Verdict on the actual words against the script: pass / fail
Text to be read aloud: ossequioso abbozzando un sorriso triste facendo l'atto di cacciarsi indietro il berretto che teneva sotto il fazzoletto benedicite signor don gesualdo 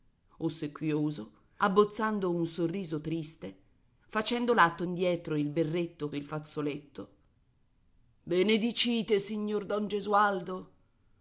fail